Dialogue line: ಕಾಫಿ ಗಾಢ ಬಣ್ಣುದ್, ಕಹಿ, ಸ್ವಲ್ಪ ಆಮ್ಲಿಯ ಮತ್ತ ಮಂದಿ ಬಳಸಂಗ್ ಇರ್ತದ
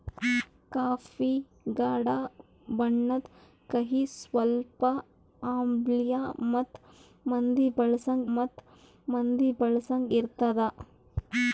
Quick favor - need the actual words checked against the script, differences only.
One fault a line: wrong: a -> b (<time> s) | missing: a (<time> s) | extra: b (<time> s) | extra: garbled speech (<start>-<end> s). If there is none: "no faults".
extra: ಮತ್ತ ಮಂದಿ ಬಳಸಂಗ್ (8.4 s)